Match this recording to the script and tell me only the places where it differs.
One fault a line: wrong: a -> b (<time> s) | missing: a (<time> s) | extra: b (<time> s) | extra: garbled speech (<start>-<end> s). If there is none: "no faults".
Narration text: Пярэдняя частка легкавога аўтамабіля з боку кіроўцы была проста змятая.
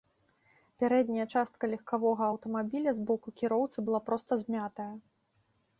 no faults